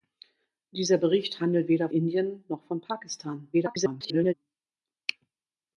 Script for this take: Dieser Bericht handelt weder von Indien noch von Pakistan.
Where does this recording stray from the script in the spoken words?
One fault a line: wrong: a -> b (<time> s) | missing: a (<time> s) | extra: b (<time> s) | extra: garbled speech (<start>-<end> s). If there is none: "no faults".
missing: von (1.9 s)
extra: garbled speech (3.5-4.3 s)